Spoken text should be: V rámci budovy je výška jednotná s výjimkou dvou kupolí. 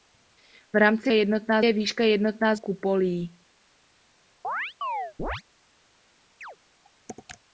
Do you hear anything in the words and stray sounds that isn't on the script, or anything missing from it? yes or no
yes